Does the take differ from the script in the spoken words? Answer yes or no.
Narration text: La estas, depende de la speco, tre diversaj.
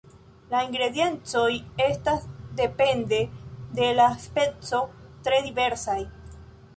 yes